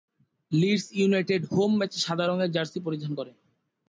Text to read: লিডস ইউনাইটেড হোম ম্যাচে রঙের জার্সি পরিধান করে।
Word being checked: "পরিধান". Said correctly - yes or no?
yes